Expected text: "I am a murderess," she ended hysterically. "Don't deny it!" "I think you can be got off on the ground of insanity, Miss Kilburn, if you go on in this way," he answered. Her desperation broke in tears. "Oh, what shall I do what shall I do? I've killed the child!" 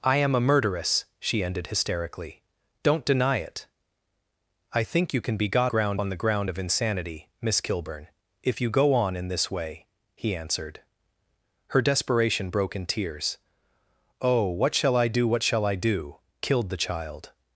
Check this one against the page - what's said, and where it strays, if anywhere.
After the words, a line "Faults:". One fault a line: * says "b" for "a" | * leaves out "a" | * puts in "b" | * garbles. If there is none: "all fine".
"I am a murderess," she ended hysterically. "Don't deny it!" "I think you can be got ground on the ground of insanity, Miss Kilburn, if you go on in this way," he answered. Her desperation broke in tears. "Oh, what shall I do what shall I do? Killed the child!"
Faults:
* says "ground" for "off"
* leaves out "I've"